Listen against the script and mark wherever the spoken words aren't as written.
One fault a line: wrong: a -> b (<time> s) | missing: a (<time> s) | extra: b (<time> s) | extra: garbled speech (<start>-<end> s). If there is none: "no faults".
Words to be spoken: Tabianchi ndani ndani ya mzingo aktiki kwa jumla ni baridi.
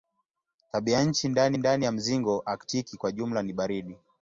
no faults